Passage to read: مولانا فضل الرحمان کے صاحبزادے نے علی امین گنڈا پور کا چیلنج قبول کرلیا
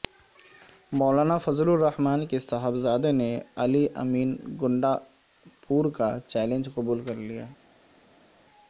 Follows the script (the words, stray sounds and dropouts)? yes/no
yes